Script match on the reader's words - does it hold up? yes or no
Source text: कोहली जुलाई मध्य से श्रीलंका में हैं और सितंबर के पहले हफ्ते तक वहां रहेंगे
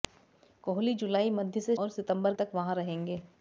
no